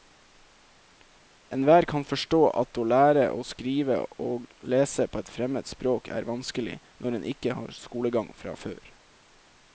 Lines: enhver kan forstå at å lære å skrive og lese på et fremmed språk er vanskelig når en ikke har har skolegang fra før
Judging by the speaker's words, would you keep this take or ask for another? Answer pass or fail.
fail